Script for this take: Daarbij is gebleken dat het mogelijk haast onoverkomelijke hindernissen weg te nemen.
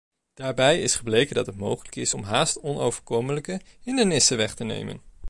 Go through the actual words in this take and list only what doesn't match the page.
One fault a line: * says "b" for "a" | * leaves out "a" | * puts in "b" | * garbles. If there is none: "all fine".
* puts in "is om"